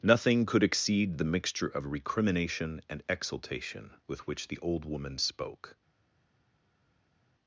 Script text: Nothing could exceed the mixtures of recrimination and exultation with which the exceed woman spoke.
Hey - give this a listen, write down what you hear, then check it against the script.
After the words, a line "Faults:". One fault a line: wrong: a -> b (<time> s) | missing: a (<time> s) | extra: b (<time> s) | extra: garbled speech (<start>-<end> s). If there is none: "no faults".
Nothing could exceed the mixture of recrimination and exultation with which the old woman spoke.
Faults:
wrong: mixtures -> mixture (1.2 s)
wrong: exceed -> old (4.6 s)